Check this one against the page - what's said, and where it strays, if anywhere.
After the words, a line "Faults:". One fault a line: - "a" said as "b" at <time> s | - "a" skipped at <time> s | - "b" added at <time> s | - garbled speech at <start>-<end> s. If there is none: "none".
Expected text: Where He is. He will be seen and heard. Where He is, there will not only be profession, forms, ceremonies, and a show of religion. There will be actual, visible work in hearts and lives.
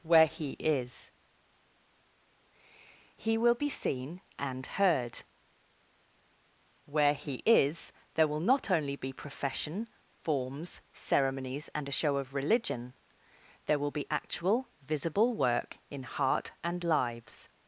Where He is. He will be seen and heard. Where He is, there will not only be profession, forms, ceremonies, and a show of religion. There will be actual, visible work in heart and lives.
Faults:
- "hearts" said as "heart" at 16.0 s